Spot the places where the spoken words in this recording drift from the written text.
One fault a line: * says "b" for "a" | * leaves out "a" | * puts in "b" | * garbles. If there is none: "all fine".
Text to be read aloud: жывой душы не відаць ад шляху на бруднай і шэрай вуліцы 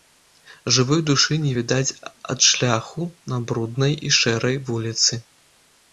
all fine